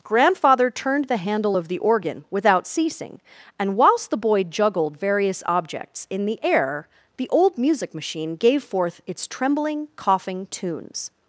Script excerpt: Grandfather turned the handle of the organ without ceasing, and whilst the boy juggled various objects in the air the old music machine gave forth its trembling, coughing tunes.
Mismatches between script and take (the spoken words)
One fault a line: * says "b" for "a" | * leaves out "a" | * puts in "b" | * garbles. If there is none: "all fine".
all fine